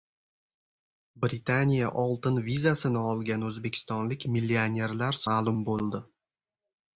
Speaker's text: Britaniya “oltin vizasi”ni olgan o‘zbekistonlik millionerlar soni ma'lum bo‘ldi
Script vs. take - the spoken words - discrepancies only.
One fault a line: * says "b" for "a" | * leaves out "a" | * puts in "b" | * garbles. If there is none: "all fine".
* leaves out "soni"